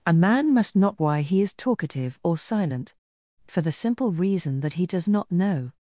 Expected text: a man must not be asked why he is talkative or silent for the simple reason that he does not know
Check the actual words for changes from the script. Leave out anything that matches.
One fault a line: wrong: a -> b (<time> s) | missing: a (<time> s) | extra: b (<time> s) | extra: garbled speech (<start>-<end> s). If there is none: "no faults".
missing: be asked (1.0 s)